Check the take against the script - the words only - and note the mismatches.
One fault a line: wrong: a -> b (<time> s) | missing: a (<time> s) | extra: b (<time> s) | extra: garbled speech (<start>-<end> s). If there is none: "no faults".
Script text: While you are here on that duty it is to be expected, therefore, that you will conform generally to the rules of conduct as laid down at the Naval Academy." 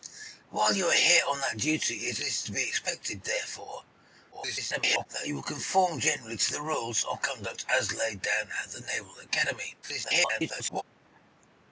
extra: garbled speech (4.3-5.1 s)
extra: garbled speech (9.8-10.8 s)